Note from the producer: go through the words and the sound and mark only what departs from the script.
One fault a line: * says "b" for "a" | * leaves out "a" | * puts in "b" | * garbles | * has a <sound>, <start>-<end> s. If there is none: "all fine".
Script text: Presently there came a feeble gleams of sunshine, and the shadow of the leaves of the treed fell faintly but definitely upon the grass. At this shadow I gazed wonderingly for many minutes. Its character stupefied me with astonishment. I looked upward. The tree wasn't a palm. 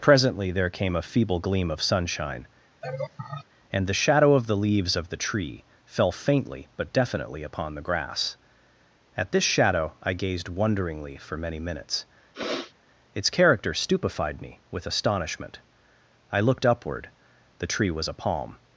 * says "gleam" for "gleams"
* has a laugh, 2.8-3.5 s
* says "tree" for "treed"
* has a sniff, 12.3-12.7 s
* says "was" for "wasn't"